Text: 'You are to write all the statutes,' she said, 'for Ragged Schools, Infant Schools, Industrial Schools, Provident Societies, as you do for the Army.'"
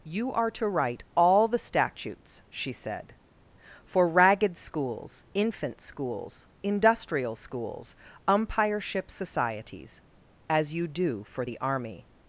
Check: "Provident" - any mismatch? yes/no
yes